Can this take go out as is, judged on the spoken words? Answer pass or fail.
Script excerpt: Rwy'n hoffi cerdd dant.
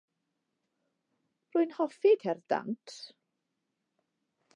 pass